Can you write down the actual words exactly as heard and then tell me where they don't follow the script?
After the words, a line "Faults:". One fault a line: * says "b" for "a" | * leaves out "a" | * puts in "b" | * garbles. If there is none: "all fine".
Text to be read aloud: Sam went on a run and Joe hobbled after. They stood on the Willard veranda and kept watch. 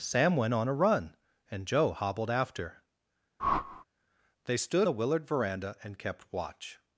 Sam went on a run and Joe hobbled after. They stood the Willard veranda and kept watch.
Faults:
* leaves out "on"